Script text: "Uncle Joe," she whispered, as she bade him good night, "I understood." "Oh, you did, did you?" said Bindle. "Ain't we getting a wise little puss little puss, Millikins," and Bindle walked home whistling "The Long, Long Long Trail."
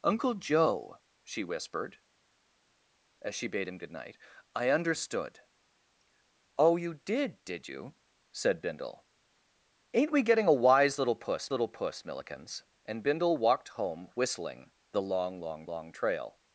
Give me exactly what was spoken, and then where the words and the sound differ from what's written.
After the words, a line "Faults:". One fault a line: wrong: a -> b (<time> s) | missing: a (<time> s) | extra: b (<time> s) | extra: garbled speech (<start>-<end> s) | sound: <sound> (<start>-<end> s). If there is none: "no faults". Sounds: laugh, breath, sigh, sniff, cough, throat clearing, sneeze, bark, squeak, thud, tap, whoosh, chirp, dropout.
"Uncle Joe," she whispered, as she bade him good night, "I understood." "Oh, you did, did you?" said Bindle. "Ain't we getting a wise little puss little puss, Millikins," and Bindle walked home whistling "The Long, Long Long Trail."
Faults:
no faults